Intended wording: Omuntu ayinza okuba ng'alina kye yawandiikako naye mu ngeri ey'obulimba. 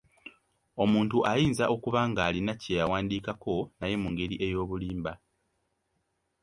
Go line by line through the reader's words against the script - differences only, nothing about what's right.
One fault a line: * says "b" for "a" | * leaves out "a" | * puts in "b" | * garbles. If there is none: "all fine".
all fine